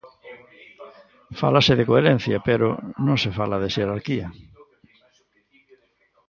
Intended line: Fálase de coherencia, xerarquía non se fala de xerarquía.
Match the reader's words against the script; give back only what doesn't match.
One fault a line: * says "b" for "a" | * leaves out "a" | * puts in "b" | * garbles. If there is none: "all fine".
* says "pero" for "xerarquía"